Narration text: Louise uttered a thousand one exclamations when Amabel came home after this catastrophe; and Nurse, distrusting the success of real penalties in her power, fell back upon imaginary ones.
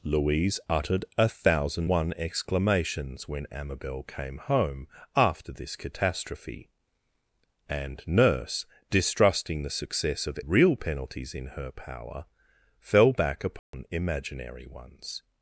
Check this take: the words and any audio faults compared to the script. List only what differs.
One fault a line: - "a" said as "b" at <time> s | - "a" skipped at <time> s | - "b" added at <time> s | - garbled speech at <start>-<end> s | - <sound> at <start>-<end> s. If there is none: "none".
- dropout at 13.6-13.7 s